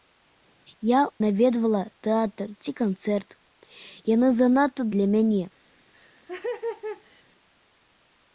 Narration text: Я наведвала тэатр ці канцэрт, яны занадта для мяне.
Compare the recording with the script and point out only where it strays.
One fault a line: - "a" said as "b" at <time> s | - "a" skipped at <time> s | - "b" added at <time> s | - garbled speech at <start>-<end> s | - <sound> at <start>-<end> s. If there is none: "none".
- laugh at 5.9-7.2 s